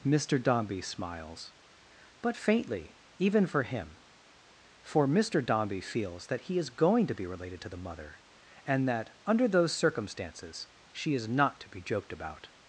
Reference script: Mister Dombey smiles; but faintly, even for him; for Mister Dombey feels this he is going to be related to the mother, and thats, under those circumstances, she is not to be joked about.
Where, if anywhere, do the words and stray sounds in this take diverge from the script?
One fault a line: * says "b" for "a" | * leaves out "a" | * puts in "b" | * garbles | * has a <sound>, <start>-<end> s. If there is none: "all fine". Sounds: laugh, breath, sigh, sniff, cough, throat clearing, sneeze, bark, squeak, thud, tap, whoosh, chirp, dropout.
* says "that" for "this"
* says "that" for "thats"